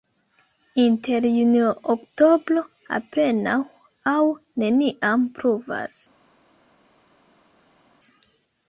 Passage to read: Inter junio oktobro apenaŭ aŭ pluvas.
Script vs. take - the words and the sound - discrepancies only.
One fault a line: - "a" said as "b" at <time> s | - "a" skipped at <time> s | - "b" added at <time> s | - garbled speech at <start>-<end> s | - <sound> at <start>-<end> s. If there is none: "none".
- "neniam" added at 4.6 s